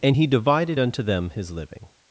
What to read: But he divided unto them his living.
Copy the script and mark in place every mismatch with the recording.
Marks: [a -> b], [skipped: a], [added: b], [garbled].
[But -> And] he divided unto them his living.